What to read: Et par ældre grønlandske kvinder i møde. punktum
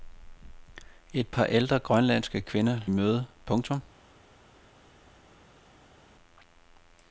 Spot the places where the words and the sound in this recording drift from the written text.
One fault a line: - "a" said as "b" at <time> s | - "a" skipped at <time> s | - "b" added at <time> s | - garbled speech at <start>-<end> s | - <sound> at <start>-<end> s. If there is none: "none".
none